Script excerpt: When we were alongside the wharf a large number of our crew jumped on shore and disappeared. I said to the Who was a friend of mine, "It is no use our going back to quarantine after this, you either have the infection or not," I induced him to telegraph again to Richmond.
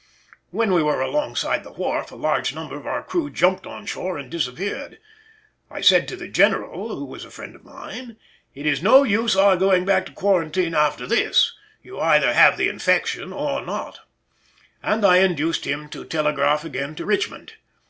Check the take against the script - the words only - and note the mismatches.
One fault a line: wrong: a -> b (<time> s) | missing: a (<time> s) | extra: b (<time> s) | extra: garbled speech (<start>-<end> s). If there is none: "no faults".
extra: General (6.3 s)
extra: and (14.8 s)